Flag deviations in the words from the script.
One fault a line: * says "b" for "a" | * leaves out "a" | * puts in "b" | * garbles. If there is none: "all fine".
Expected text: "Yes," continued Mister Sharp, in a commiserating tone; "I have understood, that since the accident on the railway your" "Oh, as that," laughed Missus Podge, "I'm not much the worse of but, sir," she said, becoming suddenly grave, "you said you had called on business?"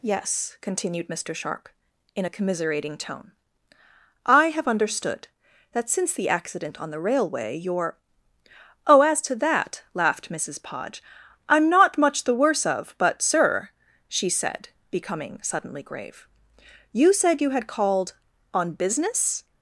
* puts in "to"